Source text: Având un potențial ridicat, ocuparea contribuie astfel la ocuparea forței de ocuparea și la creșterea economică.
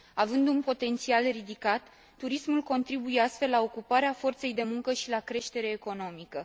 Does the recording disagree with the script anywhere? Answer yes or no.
yes